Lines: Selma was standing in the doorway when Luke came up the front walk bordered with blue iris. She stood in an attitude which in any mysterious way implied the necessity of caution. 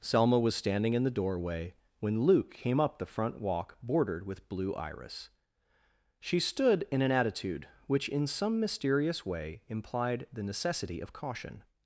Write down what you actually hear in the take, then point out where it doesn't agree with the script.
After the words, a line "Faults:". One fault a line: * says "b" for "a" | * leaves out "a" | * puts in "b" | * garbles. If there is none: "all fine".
Selma was standing in the doorway when Luke came up the front walk bordered with blue iris. She stood in an attitude which in some mysterious way implied the necessity of caution.
Faults:
* says "some" for "any"